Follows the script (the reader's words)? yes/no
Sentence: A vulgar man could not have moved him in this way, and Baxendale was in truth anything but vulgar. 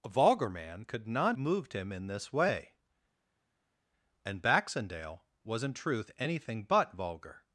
no